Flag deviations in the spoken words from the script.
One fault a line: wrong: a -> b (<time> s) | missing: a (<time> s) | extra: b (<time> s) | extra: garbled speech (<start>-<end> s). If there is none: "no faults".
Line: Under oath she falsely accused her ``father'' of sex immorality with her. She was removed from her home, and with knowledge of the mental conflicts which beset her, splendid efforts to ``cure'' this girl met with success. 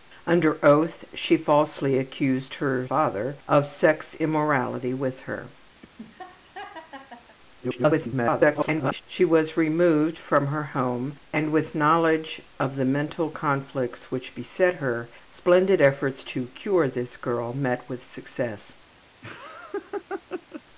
extra: garbled speech (7.6-9.0 s)